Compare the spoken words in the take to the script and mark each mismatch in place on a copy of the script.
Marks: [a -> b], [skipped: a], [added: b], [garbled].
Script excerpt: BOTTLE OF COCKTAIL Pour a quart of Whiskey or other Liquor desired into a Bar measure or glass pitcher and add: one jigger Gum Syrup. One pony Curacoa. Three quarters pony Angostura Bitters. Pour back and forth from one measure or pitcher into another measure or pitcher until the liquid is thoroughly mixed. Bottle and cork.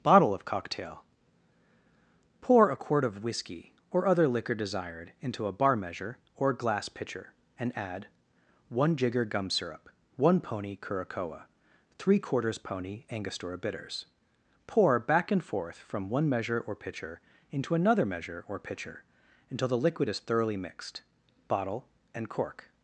BOTTLE OF COCKTAIL Pour a quart of Whiskey or other Liquor desired into a Bar measure or glass pitcher and add: one jigger Gum Syrup. One pony Curacoa. Three quarters pony Angostura Bitters. Pour back and forth from one measure or pitcher into another measure or pitcher until the liquid is thoroughly mixed. Bottle and cork.